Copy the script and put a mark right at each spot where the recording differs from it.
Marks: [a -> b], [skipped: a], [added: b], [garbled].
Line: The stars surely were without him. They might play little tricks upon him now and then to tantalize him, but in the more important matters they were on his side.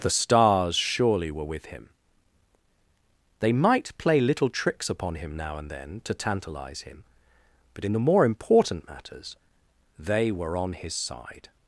The stars surely were [without -> with] him. They might play little tricks upon him now and then to tantalize him, but in the more important matters they were on his side.